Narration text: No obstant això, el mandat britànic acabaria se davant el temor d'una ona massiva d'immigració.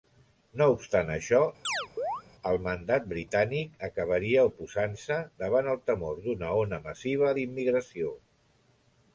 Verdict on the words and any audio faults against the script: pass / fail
fail